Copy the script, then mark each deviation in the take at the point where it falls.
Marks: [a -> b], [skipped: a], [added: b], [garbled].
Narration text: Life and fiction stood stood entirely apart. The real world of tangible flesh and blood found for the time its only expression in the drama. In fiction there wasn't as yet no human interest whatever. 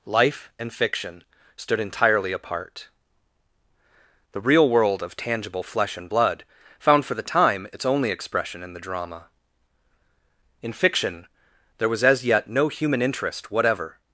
Life and fiction stood [skipped: stood] entirely apart. The real world of tangible flesh and blood found for the time its only expression in the drama. In fiction there [wasn't -> was] as yet no human interest whatever.